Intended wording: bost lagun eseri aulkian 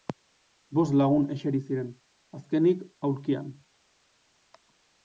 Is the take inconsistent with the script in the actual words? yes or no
yes